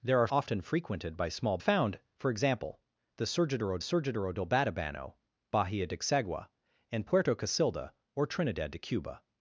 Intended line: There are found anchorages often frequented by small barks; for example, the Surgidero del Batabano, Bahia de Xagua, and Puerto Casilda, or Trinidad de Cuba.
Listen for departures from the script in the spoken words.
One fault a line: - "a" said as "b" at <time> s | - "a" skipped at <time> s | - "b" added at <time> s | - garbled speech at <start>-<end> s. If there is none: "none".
- "found anchorages" skipped at 0.3 s
- "barks" said as "found" at 1.6 s
- "Surgidero" added at 3.8 s